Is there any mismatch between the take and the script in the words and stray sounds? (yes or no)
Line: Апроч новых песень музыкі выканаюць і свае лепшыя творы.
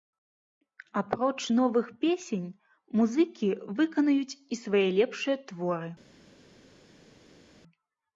no